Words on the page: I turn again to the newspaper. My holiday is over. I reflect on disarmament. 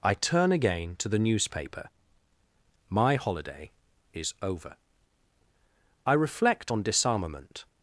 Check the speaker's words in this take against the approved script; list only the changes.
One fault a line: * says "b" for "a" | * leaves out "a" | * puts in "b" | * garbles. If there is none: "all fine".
all fine